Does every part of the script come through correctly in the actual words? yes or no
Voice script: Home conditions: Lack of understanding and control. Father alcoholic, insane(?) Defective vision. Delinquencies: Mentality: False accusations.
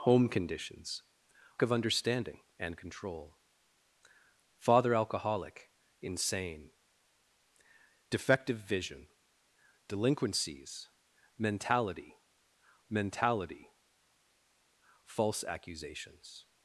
no